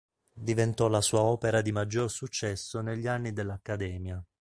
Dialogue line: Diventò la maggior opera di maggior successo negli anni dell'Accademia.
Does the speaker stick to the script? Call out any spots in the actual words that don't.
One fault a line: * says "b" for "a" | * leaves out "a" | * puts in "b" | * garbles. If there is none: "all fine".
* says "sua" for "maggior"